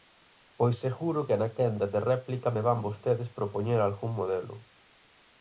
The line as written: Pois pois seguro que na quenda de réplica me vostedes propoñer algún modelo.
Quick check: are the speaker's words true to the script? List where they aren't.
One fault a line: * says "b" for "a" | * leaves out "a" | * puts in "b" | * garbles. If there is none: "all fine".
* leaves out "pois"
* puts in "van"